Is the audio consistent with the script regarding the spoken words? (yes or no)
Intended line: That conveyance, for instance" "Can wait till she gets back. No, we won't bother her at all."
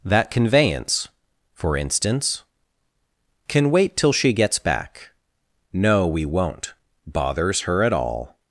no